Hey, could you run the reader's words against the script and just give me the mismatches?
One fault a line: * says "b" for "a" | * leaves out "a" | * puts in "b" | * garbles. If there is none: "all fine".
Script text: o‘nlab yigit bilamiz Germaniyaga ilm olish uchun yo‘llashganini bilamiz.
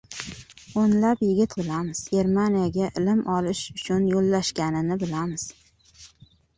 all fine